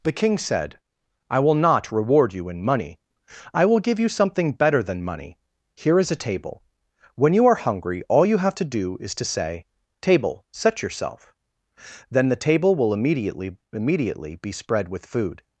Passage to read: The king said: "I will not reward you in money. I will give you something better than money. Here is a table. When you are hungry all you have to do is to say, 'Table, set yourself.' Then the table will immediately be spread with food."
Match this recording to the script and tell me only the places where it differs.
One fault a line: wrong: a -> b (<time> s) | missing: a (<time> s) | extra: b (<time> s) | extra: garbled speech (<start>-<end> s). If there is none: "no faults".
extra: immediately (13.7 s)